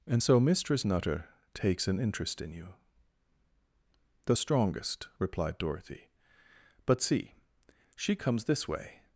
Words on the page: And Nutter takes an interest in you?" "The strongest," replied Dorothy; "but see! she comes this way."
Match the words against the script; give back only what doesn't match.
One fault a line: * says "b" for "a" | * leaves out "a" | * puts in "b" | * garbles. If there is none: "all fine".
* puts in "so Mistress"